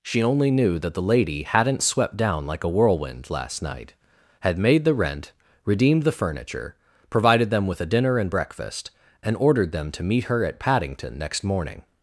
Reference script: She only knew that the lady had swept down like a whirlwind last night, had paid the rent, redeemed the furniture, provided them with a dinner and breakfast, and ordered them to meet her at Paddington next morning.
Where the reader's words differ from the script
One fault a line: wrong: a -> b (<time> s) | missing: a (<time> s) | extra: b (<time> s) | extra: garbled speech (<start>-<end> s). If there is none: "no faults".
wrong: had -> hadn't (1.4 s)
wrong: paid -> made (4.6 s)